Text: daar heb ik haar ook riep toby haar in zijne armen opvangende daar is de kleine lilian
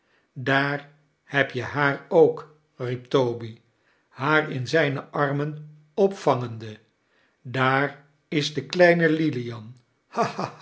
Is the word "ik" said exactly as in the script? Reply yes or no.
no